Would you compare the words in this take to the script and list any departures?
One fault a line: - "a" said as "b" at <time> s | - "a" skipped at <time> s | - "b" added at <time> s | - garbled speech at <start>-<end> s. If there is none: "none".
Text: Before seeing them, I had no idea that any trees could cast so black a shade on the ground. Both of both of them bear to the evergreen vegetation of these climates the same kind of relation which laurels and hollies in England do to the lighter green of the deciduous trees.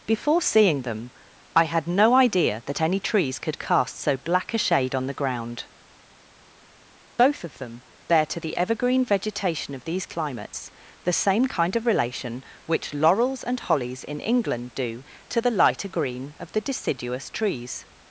- "both of" skipped at 7.6 s